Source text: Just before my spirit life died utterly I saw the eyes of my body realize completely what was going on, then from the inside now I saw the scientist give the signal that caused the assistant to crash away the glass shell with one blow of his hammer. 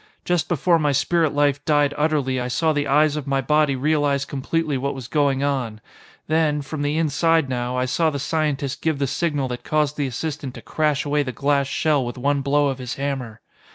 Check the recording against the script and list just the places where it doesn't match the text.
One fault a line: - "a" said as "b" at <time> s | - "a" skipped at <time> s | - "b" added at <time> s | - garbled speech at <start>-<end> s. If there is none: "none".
none